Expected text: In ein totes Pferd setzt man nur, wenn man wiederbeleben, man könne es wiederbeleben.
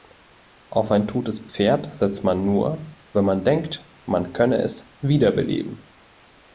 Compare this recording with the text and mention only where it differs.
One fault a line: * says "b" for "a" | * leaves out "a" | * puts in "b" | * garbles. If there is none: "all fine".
* says "Auf" for "In"
* says "denkt" for "wiederbeleben"